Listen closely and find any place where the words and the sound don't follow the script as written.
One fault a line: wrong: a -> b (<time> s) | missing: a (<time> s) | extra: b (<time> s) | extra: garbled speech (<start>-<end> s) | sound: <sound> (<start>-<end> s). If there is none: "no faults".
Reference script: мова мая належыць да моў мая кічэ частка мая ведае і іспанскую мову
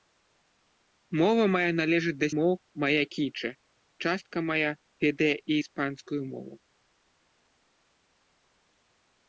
no faults